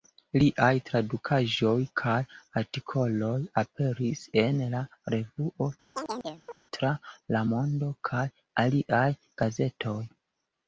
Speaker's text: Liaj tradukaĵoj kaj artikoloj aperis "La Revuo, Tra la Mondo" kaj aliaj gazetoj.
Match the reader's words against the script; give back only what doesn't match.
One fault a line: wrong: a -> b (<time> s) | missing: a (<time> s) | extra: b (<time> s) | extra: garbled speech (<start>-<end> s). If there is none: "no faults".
extra: en (4.5 s)